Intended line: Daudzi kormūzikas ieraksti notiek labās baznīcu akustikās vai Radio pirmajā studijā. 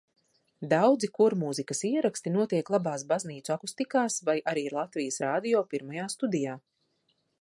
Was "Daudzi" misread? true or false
false